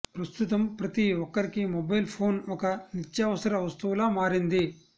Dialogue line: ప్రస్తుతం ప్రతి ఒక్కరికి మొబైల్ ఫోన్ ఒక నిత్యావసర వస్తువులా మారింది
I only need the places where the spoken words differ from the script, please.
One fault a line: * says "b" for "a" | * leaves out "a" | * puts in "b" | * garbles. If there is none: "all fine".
all fine